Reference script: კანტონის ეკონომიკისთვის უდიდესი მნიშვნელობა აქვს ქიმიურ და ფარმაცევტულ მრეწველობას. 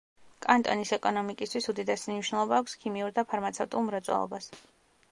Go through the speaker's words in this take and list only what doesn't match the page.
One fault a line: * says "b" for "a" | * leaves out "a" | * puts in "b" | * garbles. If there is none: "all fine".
all fine